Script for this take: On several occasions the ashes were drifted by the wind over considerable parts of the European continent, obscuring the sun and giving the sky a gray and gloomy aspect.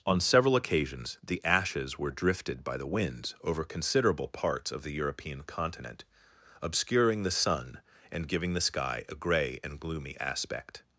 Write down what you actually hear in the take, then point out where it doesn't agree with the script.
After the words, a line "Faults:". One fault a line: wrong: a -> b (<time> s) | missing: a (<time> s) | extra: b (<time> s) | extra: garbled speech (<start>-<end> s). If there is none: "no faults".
On several occasions the ashes were drifted by the winds over considerable parts of the European continent, obscuring the sun and giving the sky a gray and gloomy aspect.
Faults:
wrong: wind -> winds (2.9 s)